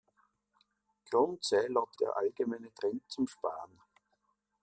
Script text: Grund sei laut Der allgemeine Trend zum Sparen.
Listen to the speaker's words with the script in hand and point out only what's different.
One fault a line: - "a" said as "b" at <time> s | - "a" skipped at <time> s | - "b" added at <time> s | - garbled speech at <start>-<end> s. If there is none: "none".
none